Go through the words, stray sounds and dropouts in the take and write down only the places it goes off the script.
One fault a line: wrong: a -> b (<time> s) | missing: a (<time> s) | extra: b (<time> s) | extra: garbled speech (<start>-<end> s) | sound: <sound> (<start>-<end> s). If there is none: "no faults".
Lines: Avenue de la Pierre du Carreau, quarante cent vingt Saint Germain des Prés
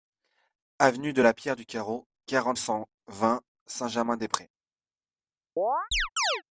sound: chirp (5.6-6.4 s)